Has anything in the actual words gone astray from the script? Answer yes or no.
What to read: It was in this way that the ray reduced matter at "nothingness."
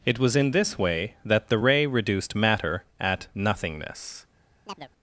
no